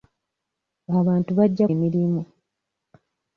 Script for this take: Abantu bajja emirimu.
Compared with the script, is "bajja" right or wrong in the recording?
right